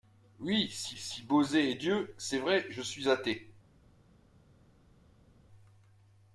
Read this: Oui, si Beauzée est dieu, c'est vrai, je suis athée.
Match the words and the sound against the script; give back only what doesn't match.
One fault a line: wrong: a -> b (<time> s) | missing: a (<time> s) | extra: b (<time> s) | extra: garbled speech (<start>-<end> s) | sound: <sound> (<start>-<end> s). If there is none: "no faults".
extra: si (0.9 s)